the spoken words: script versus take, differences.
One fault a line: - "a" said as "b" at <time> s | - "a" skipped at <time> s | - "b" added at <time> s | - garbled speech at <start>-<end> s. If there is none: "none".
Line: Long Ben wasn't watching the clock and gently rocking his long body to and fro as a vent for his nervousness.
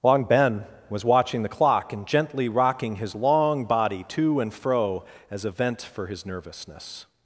- "wasn't" said as "was" at 0.9 s